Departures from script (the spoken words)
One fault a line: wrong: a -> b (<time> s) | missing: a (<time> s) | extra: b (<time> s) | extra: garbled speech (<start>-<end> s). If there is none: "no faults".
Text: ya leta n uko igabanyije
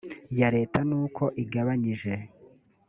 no faults